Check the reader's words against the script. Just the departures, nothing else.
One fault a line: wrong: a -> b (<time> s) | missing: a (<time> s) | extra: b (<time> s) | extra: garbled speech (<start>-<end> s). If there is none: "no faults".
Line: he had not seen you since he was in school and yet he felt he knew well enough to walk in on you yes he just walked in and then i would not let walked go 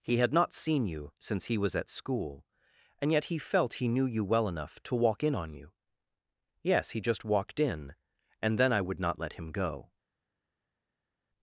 wrong: in -> at (1.8 s)
extra: you (4.0 s)
wrong: walked -> him (9.3 s)